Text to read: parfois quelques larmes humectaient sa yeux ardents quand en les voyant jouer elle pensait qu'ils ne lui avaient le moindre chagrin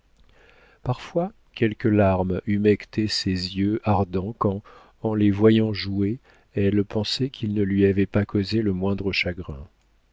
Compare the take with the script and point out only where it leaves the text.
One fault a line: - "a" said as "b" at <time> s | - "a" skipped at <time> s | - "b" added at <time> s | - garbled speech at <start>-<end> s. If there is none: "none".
- "sa" said as "ses" at 3.1 s
- "pas causé" added at 8.1 s